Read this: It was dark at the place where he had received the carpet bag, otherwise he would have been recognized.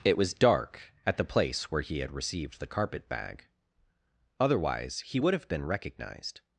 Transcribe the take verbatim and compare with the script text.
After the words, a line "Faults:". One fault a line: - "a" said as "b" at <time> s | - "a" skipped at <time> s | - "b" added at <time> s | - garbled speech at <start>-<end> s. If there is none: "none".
It was dark at the place where he had received the carpet bag, otherwise he would have been recognized.
Faults:
none